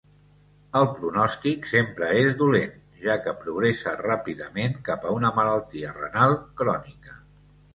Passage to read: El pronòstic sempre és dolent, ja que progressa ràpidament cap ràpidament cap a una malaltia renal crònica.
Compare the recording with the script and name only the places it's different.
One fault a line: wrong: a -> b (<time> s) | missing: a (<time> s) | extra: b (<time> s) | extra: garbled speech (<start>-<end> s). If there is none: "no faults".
missing: ràpidament cap (5.1 s)